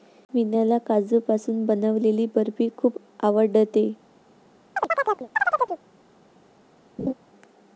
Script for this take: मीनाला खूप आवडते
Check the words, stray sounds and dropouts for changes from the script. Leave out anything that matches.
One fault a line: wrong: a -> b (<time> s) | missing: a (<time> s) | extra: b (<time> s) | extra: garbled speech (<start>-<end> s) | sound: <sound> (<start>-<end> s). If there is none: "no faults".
extra: काजूपासून बनवलेली बर्फी (0.8 s)
sound: chirp (4.8-5.8 s)
sound: laugh (7.0-7.1 s)